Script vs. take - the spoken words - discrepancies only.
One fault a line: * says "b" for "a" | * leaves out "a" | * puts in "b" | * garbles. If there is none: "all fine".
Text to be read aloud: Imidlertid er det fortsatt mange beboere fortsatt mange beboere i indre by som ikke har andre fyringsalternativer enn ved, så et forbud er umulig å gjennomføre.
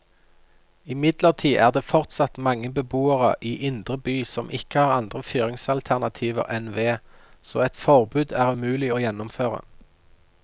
* leaves out "fortsatt mange beboere"